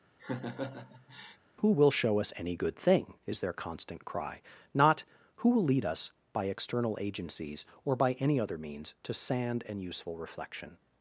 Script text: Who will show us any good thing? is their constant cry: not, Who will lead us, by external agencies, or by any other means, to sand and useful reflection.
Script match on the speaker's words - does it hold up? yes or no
yes